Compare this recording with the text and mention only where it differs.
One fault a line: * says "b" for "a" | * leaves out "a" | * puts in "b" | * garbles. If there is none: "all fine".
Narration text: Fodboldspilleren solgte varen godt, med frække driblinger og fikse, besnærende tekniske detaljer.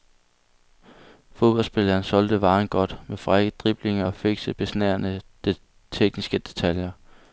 all fine